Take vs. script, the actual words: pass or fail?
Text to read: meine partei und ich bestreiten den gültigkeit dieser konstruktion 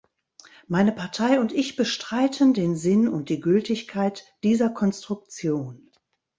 fail